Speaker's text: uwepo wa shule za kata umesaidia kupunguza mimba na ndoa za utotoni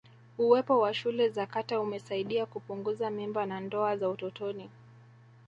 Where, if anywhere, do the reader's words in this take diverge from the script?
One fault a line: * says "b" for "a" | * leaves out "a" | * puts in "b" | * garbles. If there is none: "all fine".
all fine